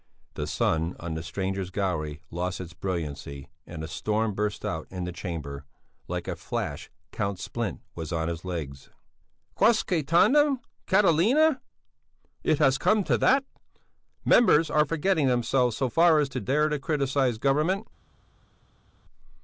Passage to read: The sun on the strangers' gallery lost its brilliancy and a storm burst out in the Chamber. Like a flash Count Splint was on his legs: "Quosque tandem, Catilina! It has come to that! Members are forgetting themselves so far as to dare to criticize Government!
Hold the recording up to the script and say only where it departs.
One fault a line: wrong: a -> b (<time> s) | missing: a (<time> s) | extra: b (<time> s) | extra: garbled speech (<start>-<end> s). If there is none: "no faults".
no faults